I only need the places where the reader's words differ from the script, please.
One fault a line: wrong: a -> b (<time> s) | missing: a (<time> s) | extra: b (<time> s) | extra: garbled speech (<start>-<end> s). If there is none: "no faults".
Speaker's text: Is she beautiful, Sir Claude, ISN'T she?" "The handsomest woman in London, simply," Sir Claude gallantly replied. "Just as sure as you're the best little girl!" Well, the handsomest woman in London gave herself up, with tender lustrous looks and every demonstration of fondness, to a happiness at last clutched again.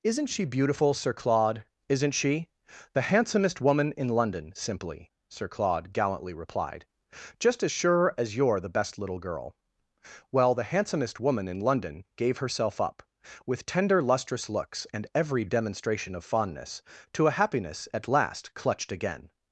wrong: Is -> Isn't (0.0 s)